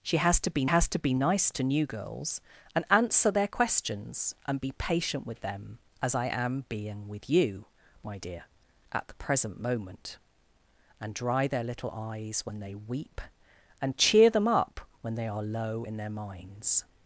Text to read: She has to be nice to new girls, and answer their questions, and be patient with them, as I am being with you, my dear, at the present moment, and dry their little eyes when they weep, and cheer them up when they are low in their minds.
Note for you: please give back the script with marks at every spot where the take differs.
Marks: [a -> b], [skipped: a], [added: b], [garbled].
She has to be [added: has to be] nice to new girls, and answer their questions, and be patient with them, as I am being with you, my dear, at the present moment, and dry their little eyes when they weep, and cheer them up when they are low in their minds.